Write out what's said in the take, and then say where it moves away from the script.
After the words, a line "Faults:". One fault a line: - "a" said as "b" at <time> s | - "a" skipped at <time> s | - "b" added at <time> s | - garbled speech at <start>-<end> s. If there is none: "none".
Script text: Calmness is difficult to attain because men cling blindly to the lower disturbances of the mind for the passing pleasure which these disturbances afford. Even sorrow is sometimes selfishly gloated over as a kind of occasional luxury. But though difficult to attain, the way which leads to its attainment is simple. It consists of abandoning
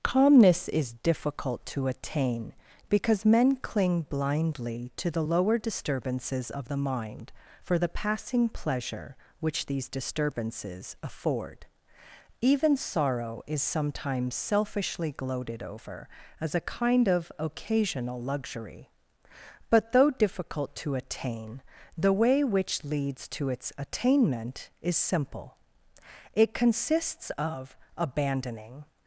Calmness is difficult to attain because men cling blindly to the lower disturbances of the mind for the passing pleasure which these disturbances afford. Even sorrow is sometimes selfishly gloated over as a kind of occasional luxury. But though difficult to attain, the way which leads to its attainment is simple. It consists of abandoning
Faults:
none